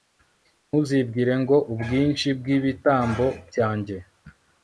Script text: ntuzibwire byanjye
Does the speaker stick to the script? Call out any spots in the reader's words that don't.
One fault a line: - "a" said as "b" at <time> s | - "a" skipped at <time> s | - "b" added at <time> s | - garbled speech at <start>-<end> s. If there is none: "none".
- "ngo ubwinshi bw'ibitambo" added at 1.4 s